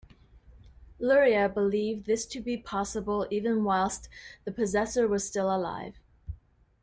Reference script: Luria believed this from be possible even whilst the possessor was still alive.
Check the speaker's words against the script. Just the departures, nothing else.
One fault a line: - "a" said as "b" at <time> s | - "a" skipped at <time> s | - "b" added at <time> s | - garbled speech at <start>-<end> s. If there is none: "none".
- "from" said as "to" at 2.2 s